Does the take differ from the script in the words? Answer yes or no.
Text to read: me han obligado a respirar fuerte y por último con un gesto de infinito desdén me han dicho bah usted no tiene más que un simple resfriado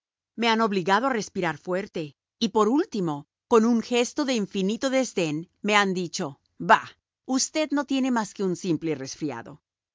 no